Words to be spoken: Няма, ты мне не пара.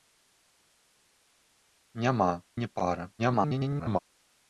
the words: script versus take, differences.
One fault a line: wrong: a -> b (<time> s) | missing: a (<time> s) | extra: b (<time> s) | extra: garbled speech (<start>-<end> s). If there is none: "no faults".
missing: ты мне (2.4 s)
extra: garbled speech (3.2-4.0 s)